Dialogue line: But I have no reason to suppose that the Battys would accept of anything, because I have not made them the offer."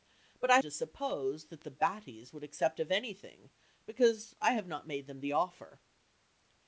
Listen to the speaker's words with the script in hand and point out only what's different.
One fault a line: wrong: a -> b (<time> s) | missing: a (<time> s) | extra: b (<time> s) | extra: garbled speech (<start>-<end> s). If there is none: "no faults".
missing: have no reason (0.6 s)